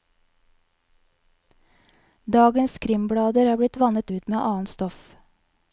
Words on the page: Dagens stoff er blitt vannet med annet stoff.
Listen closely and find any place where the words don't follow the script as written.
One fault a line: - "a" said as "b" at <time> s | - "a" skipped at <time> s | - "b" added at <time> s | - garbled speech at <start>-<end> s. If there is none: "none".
- "stoff" said as "krimblader" at 2.9 s
- "ut" added at 4.1 s